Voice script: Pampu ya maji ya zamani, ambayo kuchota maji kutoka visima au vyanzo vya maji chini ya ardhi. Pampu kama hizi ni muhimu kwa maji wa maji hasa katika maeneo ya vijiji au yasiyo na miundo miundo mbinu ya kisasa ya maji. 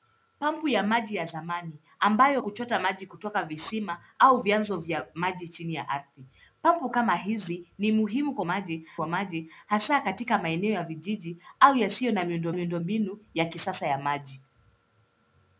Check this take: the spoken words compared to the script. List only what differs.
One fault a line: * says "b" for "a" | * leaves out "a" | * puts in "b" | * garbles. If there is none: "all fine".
all fine